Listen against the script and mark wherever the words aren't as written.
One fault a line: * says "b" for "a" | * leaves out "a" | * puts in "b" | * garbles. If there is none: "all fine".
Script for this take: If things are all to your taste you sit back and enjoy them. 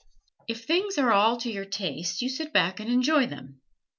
all fine